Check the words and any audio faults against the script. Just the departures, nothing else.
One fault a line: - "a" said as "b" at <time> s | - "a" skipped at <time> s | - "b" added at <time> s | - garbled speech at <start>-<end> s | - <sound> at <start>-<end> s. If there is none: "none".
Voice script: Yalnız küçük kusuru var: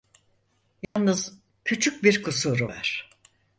- dropout at 0.8-1.0 s
- "bir" added at 2.0 s